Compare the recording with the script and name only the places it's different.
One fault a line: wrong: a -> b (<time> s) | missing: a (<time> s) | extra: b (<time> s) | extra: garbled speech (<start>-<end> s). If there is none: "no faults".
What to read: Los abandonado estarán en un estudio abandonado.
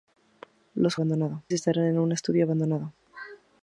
no faults